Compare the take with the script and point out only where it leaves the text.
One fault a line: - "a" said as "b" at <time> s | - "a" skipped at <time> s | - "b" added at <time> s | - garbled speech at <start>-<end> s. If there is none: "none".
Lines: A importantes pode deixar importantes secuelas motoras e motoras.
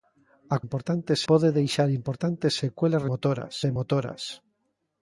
none